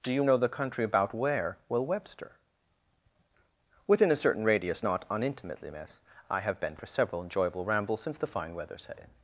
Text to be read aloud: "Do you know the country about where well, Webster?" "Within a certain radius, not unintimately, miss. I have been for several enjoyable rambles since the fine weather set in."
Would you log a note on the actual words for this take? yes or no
no